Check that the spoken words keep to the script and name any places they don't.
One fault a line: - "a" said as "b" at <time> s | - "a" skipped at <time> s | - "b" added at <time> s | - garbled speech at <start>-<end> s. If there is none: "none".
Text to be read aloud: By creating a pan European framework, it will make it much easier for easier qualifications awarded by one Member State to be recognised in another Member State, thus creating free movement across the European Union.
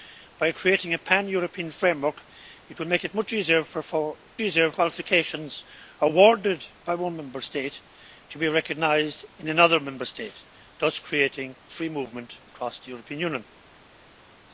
none